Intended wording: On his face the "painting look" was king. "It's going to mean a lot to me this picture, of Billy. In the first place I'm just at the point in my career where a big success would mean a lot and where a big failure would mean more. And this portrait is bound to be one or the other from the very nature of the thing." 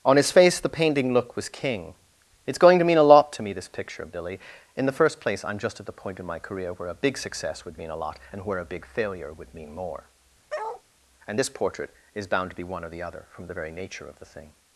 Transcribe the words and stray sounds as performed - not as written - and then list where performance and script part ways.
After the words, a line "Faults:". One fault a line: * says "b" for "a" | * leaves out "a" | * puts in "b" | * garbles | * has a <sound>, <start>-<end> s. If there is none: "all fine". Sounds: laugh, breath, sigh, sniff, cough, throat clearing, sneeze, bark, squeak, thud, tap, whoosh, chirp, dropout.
On his face the "painting look" was king. "It's going to mean a lot to me this picture, of Billy. In the first place I'm just at the point in my career where a big success would mean a lot and where a big failure would mean more. And this portrait is bound to be one or the other from the very nature of the thing."
Faults:
* has a bark, 10.5-10.8 s